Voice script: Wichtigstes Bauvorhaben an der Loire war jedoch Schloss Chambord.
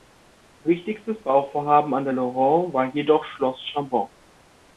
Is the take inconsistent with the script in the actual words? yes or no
no